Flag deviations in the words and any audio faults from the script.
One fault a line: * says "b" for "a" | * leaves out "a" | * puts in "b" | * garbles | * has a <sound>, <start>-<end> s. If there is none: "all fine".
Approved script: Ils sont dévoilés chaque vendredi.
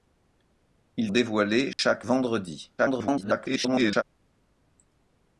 * leaves out "sont"
* has a dropout, 1.7-1.8 s
* garbles